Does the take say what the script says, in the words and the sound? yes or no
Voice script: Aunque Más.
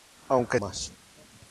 yes